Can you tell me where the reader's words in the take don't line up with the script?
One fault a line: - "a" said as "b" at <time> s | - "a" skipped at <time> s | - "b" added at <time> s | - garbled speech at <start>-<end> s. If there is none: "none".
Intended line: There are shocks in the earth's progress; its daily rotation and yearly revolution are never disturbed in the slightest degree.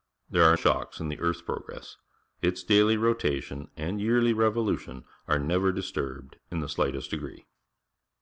none